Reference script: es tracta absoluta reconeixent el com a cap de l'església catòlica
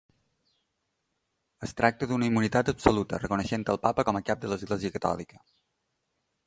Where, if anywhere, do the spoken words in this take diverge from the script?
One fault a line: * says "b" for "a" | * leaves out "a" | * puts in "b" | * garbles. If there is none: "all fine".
* puts in "d'una immunitat"
* puts in "papa"